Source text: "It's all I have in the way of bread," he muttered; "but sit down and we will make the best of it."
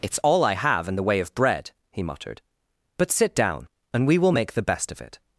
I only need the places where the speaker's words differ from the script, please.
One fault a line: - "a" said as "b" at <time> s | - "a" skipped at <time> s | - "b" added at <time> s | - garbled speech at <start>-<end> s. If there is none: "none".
none